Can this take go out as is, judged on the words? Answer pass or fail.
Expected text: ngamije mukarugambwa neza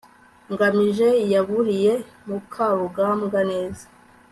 fail